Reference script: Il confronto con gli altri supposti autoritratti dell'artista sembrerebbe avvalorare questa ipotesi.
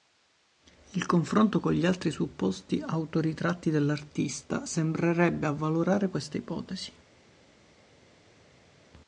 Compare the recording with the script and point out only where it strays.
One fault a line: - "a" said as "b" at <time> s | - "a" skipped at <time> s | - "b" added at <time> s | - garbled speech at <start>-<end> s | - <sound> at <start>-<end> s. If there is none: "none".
none